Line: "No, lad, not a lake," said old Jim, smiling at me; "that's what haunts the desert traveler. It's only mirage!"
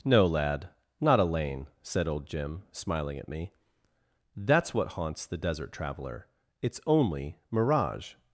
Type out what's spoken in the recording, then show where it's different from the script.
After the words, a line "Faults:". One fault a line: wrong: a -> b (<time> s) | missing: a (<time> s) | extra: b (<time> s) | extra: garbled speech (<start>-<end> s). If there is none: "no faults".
"No, lad, not a lane," said old Jim, smiling at me; "that's what haunts the desert traveler. It's only mirage!"
Faults:
wrong: lake -> lane (1.2 s)